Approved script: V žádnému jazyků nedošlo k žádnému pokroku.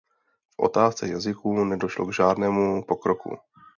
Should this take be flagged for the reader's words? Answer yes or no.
yes